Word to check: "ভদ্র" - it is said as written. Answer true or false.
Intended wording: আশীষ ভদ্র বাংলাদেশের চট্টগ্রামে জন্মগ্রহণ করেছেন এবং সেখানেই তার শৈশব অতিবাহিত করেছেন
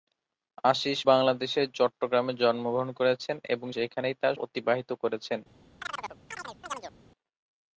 false